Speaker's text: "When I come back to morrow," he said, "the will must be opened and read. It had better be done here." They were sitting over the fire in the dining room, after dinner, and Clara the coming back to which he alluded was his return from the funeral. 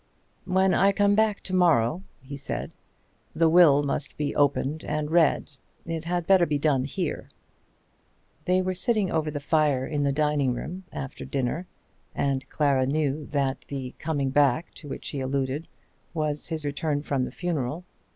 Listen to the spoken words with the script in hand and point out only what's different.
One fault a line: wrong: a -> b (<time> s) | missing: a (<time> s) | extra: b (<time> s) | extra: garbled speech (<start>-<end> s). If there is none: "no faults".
extra: knew that (12.9 s)